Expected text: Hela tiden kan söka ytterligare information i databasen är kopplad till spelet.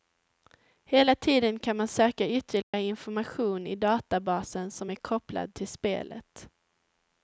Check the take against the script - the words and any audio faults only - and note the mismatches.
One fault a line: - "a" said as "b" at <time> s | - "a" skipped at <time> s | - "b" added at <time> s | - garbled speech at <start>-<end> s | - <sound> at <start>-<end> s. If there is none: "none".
- "man" added at 1.8 s
- dropout at 2.6-2.7 s
- "som" added at 4.7 s